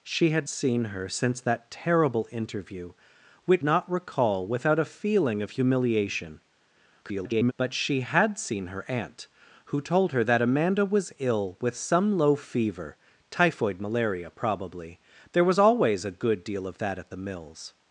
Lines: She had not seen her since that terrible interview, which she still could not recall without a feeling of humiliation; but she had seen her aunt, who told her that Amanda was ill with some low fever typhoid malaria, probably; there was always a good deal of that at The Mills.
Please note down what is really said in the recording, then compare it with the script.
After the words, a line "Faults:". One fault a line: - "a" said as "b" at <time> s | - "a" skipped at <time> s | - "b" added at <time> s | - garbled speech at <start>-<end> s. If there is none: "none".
She had seen her since that terrible interview, which not recall without a feeling of humiliation; [garbled] but she had seen her aunt, who told her that Amanda was ill with some low fever typhoid malaria, probably; there was always a good deal of that at The Mills.
Faults:
- "not" skipped at 0.5 s
- "she still could" skipped at 3.6 s
- garbled speech at 7.0-7.5 s